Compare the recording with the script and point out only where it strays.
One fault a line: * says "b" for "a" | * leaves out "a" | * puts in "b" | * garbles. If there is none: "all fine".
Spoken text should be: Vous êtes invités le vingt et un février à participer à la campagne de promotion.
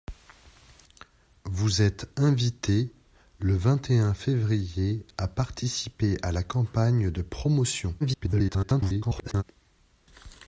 * garbles